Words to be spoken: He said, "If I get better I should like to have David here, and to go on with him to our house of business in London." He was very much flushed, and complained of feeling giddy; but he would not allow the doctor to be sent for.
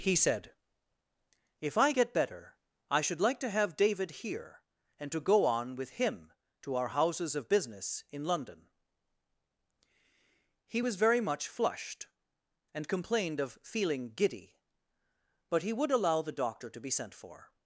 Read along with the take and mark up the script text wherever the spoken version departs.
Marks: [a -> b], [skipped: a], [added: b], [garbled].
He said, "If I get better I should like to have David here, and to go on with him to our [house -> houses] of business in London." He was very much flushed, and complained of feeling giddy; but he would [skipped: not] allow the doctor to be sent for.